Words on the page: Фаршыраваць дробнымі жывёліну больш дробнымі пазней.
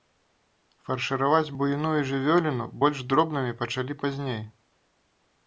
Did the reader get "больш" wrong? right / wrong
right